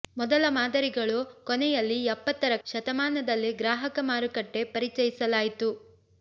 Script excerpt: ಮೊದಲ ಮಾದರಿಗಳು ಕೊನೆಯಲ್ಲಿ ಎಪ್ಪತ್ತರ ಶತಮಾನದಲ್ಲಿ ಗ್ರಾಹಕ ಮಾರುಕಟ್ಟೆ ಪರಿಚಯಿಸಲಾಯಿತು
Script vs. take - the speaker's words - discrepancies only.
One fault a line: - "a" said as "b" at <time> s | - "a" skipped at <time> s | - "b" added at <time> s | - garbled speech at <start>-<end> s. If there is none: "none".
none